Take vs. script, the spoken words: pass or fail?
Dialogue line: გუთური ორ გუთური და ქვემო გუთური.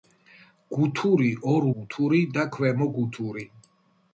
pass